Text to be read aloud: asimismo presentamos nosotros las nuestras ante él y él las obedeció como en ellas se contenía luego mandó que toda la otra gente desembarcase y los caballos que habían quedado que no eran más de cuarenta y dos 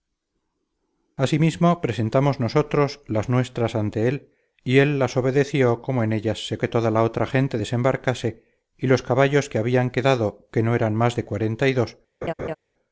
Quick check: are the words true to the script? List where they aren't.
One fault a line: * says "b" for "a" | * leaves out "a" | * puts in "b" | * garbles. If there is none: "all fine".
* leaves out "contenía luego mandó"